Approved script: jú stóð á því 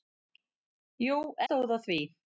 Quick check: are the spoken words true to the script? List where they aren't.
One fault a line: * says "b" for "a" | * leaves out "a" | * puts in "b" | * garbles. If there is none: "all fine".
all fine